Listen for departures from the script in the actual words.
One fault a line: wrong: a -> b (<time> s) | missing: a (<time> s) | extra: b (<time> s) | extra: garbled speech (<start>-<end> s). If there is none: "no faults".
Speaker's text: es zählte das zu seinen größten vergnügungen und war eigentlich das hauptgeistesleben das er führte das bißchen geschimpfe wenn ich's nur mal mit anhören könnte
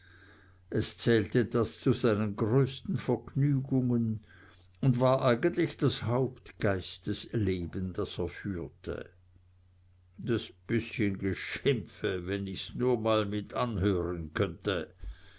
no faults